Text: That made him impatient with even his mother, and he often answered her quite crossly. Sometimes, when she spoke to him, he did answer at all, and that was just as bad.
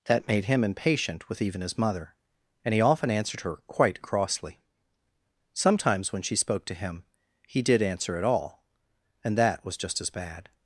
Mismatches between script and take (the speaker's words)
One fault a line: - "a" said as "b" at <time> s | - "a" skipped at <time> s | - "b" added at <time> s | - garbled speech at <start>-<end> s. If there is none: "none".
none